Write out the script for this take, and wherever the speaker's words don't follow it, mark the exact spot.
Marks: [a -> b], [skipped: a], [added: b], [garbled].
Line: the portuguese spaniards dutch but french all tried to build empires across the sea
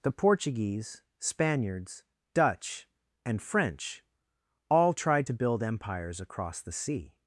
the portuguese spaniards dutch [but -> and] french all tried to build empires across the sea